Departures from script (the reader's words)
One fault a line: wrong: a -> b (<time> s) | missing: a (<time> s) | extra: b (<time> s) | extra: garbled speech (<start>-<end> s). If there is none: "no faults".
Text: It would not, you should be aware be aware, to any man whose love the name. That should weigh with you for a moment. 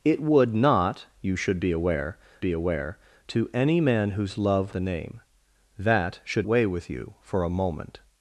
no faults